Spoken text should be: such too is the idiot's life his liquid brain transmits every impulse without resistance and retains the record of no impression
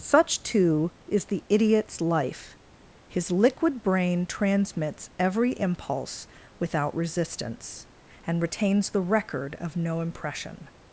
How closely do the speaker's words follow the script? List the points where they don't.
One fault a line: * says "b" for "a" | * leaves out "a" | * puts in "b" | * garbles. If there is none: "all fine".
all fine